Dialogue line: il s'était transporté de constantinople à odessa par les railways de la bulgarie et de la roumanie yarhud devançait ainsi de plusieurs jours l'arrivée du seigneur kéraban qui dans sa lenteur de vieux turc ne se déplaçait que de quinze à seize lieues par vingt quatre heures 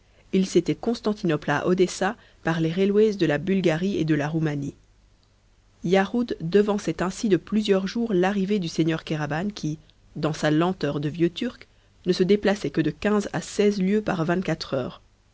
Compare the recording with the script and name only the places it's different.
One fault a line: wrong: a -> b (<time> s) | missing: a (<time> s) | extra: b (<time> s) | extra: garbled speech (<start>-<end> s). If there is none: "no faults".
missing: transporté de (0.7 s)